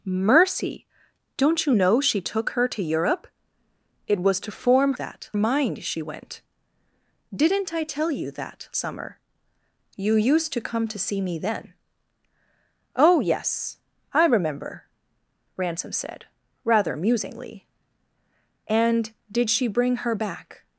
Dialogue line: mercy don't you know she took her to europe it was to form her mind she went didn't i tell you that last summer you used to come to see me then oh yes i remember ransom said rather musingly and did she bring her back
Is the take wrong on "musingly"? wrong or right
right